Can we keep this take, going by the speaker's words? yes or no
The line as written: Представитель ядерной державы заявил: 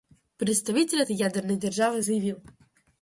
no